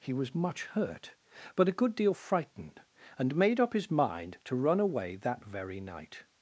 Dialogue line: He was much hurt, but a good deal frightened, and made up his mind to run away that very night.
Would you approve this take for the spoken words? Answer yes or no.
yes